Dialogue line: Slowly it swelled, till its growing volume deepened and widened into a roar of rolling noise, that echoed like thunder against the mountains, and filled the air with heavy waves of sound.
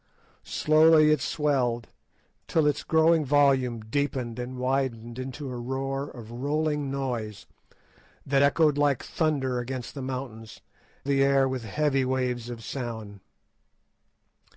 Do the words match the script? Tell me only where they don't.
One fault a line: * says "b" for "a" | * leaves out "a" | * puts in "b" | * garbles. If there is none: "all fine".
* leaves out "and filled"